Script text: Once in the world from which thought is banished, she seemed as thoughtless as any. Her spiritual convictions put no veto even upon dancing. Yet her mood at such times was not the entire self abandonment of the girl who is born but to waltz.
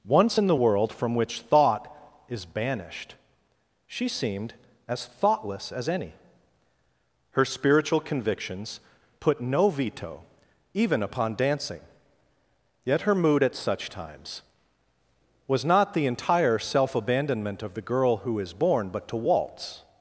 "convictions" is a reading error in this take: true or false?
false